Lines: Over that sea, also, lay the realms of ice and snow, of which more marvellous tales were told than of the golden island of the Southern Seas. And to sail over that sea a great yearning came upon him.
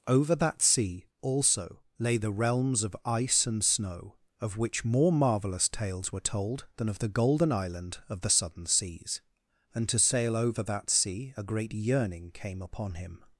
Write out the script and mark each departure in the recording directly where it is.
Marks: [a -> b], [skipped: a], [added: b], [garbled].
Over that sea, also, lay the realms of ice and snow, of which more marvellous tales were told than of the golden island of the Southern Seas. And to sail over that sea a great yearning came upon him.